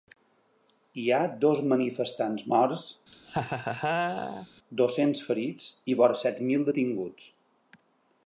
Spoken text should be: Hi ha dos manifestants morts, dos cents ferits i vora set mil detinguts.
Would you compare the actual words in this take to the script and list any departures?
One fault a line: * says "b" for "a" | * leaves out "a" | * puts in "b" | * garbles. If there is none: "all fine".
all fine